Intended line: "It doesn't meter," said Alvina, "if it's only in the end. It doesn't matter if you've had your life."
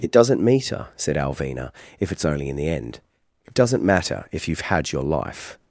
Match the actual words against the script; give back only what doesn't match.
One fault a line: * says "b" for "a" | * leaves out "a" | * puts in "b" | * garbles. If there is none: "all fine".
all fine